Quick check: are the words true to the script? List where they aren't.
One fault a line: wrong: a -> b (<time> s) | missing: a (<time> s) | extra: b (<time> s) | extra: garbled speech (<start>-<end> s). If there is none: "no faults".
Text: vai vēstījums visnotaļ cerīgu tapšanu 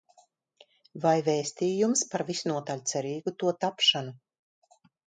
extra: par (2.1 s)
extra: to (3.5 s)